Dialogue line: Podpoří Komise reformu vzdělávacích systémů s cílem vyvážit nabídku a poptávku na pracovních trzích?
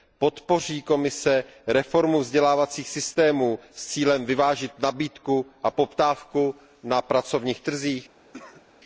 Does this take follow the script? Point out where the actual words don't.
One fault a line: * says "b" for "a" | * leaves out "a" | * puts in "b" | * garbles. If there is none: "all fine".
all fine